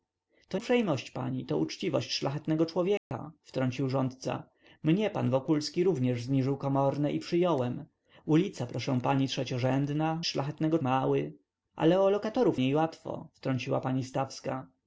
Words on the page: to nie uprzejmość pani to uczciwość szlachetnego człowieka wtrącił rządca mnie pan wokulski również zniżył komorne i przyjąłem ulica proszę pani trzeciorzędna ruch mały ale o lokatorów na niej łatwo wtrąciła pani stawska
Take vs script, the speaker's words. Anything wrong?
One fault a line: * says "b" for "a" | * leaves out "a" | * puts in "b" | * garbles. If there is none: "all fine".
* leaves out "nie"
* says "szlachetnego" for "ruch"
* leaves out "na"